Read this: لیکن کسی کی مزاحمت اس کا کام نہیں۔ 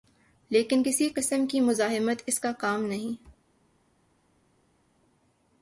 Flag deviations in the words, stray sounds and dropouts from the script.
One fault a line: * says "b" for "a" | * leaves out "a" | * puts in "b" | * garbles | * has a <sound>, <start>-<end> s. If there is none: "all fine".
* puts in "قسم"